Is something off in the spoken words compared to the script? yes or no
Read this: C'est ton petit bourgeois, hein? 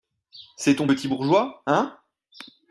no